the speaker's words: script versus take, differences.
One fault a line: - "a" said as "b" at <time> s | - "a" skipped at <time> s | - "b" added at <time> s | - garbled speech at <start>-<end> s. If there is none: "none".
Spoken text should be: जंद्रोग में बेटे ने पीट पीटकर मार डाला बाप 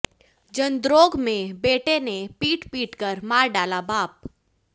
none